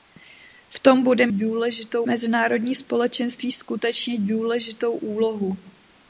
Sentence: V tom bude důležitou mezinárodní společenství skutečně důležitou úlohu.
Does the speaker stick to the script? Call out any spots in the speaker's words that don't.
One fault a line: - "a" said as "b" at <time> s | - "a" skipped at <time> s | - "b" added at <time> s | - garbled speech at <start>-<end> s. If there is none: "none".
none